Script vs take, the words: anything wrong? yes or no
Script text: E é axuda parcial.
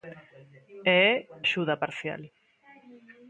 no